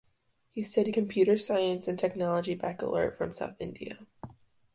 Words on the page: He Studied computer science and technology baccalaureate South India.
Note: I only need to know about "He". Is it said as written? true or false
true